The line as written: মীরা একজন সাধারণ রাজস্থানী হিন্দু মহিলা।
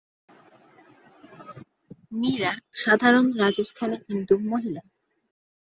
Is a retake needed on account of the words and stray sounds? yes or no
yes